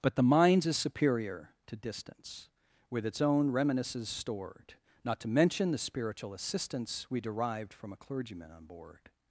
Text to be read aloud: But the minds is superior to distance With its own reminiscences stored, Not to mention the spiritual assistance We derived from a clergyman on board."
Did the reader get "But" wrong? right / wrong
right